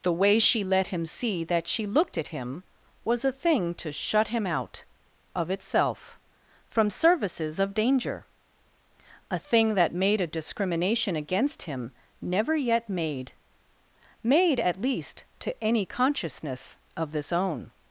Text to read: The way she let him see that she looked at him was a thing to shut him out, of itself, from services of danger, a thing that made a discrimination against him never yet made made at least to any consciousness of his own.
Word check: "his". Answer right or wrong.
wrong